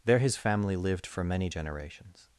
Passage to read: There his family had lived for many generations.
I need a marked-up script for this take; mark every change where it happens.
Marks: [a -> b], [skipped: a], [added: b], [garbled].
There his family [skipped: had] lived for many generations.